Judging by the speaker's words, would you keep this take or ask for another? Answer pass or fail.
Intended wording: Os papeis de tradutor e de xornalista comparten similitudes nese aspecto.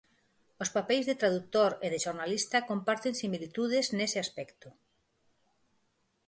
pass